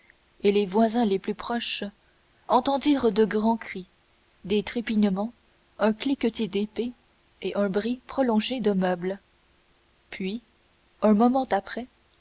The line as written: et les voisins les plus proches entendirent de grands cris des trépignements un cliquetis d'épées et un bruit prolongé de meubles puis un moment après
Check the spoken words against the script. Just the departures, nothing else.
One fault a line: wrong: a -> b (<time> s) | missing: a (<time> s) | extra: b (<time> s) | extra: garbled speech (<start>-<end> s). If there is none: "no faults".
no faults